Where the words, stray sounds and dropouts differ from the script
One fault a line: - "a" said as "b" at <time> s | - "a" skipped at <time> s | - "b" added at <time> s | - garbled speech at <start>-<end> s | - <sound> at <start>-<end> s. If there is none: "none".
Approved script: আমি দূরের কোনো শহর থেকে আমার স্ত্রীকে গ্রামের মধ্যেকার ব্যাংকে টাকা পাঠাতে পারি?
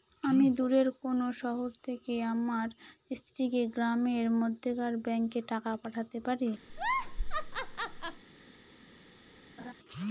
- laugh at 6.7-8.2 s
- laugh at 9.6-9.7 s